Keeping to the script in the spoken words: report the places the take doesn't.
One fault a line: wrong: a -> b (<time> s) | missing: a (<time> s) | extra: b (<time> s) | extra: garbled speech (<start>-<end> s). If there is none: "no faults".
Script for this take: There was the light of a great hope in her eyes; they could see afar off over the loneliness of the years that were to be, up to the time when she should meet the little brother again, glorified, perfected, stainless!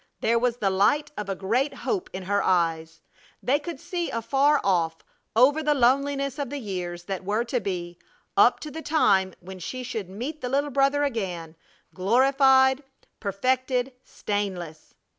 no faults